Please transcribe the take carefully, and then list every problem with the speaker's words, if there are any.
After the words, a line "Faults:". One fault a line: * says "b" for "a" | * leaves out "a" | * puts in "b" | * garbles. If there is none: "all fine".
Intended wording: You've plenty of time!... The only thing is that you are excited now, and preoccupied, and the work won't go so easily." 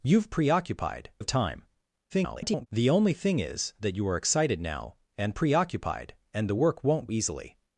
You've preoccupied of time!... [garbled] The only thing is that you are excited now, and preoccupied, and the work won't easily."
Faults:
* says "preoccupied" for "plenty"
* garbles
* leaves out "go so"